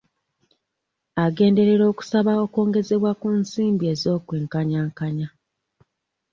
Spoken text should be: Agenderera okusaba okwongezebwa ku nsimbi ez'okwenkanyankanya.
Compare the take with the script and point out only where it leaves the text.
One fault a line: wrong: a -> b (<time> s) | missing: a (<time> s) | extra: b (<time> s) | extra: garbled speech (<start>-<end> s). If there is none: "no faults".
no faults